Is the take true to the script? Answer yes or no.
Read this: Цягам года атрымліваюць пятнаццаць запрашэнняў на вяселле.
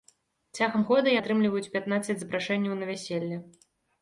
yes